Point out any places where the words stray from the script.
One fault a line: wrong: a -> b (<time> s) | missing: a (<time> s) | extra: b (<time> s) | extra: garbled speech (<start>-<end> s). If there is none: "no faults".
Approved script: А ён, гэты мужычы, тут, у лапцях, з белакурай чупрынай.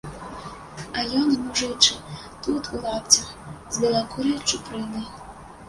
missing: гэты (1.3 s)